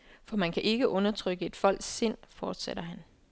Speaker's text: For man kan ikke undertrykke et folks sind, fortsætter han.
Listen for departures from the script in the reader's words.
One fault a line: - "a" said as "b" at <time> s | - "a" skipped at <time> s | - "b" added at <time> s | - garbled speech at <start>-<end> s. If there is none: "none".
none